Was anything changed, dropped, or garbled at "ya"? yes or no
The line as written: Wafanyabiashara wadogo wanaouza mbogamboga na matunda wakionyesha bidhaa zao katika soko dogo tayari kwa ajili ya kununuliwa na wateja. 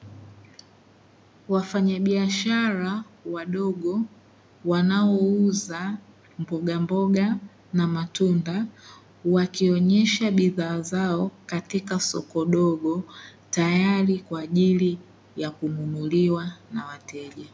no